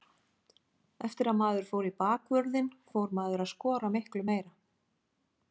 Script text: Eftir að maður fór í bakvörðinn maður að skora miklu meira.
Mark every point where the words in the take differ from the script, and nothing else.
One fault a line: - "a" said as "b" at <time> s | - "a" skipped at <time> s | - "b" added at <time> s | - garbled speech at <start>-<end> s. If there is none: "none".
- "fór" added at 2.9 s